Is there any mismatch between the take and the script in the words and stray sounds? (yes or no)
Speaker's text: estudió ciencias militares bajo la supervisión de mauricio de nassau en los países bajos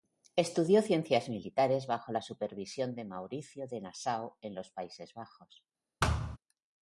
yes